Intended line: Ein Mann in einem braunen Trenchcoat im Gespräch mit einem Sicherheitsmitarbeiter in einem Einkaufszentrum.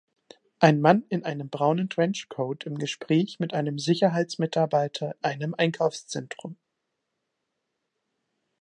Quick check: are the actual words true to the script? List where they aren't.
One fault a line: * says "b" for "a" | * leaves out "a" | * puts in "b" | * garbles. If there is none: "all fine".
* leaves out "in"